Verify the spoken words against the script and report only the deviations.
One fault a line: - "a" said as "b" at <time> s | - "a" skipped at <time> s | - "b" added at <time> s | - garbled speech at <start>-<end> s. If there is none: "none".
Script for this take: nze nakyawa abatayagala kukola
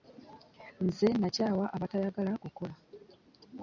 none